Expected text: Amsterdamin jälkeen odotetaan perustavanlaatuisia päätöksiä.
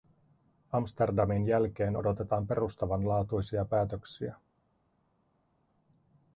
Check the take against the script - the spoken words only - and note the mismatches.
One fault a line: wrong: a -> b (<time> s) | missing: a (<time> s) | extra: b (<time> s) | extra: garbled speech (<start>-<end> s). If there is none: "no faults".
no faults